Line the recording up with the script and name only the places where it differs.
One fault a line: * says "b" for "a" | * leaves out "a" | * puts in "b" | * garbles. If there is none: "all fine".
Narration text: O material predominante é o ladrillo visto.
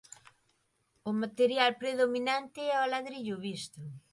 all fine